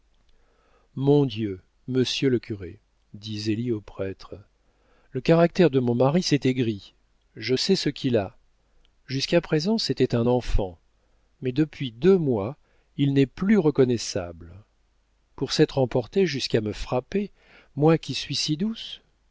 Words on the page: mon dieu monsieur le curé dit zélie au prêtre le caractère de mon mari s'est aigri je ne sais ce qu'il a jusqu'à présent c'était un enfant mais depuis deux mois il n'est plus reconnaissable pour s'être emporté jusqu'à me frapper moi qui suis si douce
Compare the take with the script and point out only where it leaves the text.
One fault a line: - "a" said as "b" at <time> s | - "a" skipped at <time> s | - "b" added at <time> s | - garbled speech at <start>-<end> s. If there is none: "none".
- "ne" skipped at 7.5 s